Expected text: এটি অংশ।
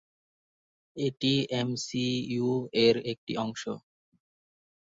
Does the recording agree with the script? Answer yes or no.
no